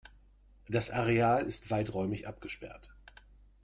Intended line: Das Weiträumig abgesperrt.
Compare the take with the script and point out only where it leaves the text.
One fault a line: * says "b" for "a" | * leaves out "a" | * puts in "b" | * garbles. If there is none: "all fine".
* puts in "Areal ist"